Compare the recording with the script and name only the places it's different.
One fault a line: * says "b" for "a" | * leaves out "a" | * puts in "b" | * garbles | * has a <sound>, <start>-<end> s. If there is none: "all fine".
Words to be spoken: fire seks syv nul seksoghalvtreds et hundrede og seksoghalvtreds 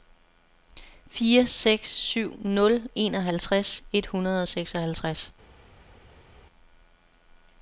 * says "enoghalvtreds" for "seksoghalvtreds"